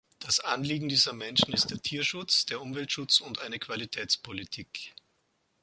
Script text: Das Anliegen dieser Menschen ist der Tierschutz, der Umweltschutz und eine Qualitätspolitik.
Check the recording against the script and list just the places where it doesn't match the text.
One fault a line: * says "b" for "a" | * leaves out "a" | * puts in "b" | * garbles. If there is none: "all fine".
all fine